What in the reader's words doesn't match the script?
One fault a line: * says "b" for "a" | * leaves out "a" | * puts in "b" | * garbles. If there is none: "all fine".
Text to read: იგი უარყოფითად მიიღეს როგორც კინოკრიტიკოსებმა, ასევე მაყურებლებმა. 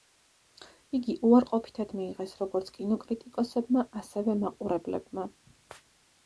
all fine